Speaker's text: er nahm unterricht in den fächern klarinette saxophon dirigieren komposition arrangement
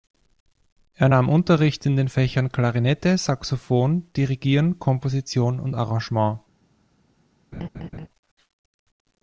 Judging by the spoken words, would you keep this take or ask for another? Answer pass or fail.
fail